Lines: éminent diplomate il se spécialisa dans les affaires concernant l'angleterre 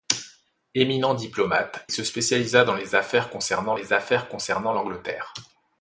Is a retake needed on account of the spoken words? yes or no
yes